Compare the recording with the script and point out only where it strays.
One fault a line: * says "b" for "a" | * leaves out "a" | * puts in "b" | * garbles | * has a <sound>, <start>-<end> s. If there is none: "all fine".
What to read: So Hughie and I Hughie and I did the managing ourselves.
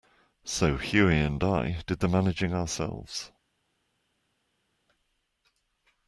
* leaves out "Hughie and I"